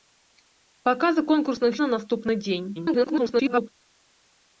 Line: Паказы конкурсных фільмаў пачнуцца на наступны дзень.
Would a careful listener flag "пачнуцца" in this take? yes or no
yes